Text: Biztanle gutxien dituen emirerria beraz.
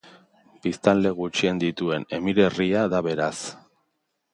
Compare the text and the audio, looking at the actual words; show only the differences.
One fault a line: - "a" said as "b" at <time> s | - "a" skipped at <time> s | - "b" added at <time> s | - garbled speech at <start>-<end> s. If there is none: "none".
- "da" added at 3.0 s